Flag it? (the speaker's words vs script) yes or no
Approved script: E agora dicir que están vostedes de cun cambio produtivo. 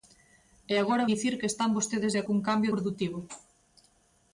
no